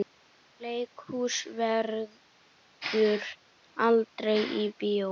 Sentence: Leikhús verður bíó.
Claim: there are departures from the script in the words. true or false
true